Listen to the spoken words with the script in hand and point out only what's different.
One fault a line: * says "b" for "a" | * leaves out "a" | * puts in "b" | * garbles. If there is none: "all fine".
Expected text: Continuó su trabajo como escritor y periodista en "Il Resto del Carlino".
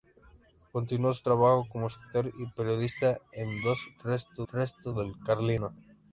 * puts in "Resto"